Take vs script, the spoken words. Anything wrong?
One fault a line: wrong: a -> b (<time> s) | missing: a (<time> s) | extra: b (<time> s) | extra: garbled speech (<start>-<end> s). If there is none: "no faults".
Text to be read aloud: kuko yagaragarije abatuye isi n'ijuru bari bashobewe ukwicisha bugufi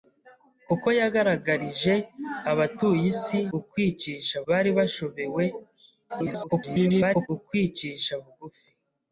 wrong: n'ijuru -> ukwicisha (3.6 s)
extra: garbled speech (6.1-7.3 s)